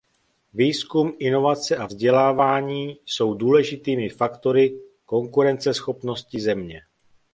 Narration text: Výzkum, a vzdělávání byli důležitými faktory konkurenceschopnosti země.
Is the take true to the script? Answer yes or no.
no